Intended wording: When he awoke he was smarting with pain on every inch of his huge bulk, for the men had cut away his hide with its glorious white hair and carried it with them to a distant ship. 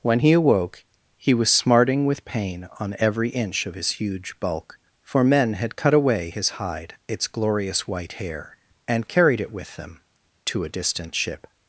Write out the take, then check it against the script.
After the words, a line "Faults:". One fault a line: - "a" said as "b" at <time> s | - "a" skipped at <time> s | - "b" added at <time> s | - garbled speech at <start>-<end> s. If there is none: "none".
When he awoke he was smarting with pain on every inch of his huge bulk, for men had cut away his hide its glorious white hair and carried it with them to a distant ship.
Faults:
- "the" skipped at 5.2 s
- "with" skipped at 6.9 s